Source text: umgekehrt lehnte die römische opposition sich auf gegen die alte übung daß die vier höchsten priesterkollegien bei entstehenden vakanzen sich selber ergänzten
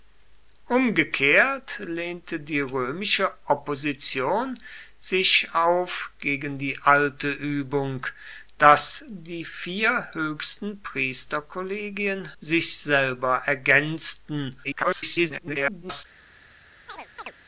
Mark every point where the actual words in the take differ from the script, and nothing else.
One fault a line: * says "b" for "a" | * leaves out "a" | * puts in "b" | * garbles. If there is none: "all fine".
* leaves out "bei entstehenden vakanzen"
* garbles